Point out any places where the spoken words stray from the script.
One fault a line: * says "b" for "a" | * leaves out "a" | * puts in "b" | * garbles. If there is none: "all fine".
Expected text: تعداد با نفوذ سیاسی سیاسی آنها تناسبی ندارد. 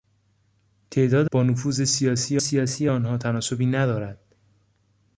all fine